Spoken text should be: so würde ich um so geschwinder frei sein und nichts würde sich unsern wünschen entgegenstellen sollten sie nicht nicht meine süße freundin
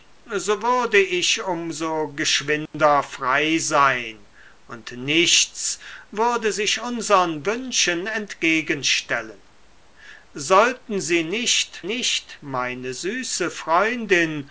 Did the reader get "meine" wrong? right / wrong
right